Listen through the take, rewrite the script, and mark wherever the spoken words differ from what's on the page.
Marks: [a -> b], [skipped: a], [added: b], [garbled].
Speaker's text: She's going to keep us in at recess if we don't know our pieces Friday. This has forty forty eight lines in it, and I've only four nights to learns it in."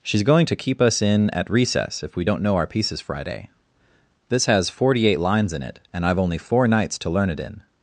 She's going to keep us in at recess if we don't know our pieces Friday. This has forty [skipped: forty] eight lines in it, and I've only four nights to [learns -> learn] it in."